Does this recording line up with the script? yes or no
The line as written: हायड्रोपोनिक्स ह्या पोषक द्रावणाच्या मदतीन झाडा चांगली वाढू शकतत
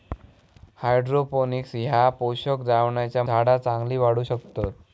no